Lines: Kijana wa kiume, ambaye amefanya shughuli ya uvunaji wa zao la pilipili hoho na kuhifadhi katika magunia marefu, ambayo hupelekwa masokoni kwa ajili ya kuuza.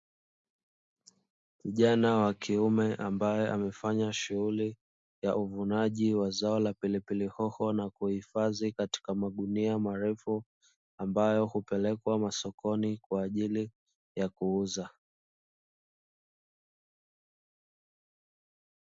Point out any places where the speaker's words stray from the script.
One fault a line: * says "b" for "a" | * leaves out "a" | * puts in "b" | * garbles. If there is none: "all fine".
all fine